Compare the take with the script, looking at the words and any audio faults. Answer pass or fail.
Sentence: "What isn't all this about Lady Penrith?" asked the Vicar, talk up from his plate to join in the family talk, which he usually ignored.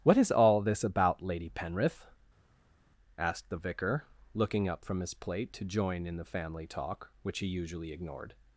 fail